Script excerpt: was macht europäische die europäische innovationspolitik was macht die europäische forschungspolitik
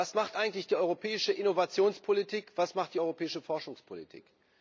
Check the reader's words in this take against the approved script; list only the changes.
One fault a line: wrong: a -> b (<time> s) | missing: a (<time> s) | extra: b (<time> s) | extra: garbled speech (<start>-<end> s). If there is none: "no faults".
wrong: europäische -> eigentlich (0.3 s)